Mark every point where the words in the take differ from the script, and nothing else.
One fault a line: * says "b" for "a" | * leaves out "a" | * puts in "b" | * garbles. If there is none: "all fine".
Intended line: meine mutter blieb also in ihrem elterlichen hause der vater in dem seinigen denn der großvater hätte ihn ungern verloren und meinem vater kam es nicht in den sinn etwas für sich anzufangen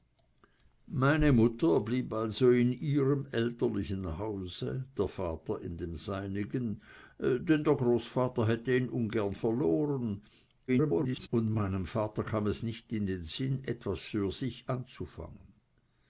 * garbles